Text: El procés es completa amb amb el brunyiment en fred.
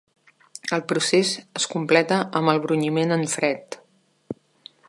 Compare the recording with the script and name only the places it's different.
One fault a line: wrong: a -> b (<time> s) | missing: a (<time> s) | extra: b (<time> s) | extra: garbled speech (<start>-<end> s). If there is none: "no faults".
missing: amb (2.5 s)